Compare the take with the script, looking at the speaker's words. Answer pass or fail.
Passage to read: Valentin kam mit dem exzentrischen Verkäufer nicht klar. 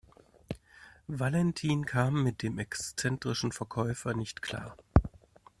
pass